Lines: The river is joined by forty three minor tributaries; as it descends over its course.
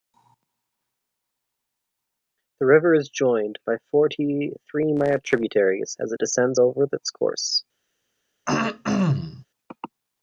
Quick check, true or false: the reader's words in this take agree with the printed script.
true